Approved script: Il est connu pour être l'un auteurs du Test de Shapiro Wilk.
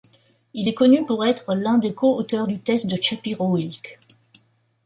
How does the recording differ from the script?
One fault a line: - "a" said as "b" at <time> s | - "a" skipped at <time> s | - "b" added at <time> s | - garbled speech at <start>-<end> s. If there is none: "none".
- "des co" added at 1.8 s